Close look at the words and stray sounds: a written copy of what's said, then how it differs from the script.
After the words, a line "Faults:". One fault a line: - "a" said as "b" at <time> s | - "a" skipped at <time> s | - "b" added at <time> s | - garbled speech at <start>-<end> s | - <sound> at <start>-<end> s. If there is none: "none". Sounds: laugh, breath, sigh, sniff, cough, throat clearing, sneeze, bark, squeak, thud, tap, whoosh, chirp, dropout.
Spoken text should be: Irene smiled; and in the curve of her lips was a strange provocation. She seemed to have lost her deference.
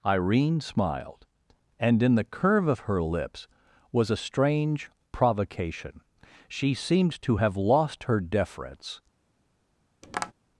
Irene smiled; and in the curve of her lips was a strange provocation. She seemed to have lost her deference.
Faults:
- tap at 10.0-10.3 s